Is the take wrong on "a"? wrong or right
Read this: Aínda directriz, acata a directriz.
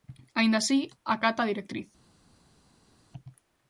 right